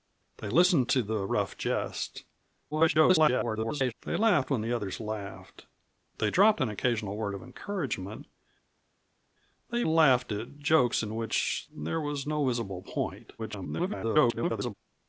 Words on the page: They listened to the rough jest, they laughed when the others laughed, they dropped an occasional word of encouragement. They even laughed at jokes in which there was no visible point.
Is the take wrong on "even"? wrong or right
wrong